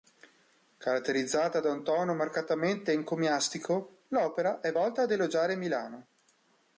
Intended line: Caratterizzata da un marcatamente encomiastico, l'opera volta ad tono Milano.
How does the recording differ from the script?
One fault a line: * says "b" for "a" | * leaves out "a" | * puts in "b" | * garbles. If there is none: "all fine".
* puts in "tono"
* puts in "è"
* says "elogiare" for "tono"